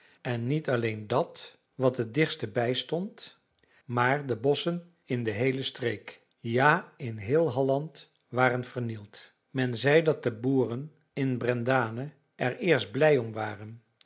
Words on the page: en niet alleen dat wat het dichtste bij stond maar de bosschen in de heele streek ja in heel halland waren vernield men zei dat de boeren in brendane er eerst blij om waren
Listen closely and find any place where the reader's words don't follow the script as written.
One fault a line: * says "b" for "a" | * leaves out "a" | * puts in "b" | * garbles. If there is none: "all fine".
all fine